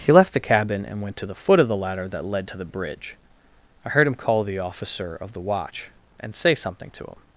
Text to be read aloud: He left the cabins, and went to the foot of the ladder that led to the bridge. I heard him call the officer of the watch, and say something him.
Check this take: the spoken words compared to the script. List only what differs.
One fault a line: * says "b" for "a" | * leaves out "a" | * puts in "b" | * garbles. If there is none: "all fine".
* says "cabin" for "cabins"
* puts in "to"